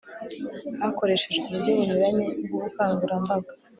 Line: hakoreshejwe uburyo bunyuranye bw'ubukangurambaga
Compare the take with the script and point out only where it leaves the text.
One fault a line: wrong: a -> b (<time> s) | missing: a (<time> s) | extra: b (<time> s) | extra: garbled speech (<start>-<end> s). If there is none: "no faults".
no faults